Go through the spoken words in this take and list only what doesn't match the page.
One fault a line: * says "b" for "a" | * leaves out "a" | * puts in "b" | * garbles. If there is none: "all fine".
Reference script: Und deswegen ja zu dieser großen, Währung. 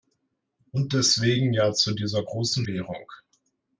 all fine